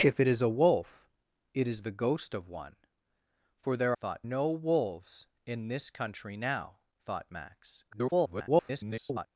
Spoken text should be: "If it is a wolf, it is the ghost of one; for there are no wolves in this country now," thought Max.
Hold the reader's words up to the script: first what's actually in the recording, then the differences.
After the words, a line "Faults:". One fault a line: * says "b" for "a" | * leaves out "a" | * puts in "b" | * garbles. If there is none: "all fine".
"If it is a wolf, it is the ghost of one; for there thought no wolves in this country now," thought Max. [garbled]
Faults:
* says "thought" for "are"
* garbles